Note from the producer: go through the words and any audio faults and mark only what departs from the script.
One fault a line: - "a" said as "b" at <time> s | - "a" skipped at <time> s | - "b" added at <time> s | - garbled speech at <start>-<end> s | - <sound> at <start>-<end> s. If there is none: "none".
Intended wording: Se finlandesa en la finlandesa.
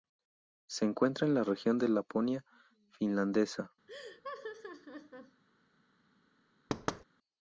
- "finlandesa" said as "encuentra" at 0.8 s
- "región de Laponia" added at 1.4 s
- laugh at 3.9-5.4 s
- thud at 6.7-7.0 s